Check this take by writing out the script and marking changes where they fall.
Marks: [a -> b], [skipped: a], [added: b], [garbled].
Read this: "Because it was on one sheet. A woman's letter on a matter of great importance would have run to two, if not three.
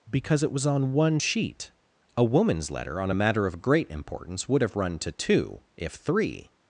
"Because it was on one sheet. A woman's letter on a matter of great importance would have run to two, if [skipped: not] three.